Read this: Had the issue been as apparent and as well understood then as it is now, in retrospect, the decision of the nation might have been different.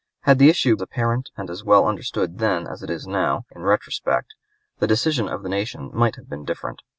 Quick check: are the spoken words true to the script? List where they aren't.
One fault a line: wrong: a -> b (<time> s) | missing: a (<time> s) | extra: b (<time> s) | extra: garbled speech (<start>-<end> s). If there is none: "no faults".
missing: been as (0.8 s)